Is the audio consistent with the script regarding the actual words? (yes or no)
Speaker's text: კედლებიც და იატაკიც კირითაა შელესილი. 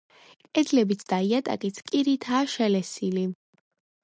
yes